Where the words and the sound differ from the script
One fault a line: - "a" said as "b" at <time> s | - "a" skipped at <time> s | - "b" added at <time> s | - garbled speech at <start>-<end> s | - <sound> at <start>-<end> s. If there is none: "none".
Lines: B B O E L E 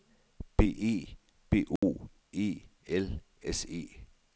- "E" added at 0.6 s
- dropout at 1.8-1.8 s
- "S" added at 3.4 s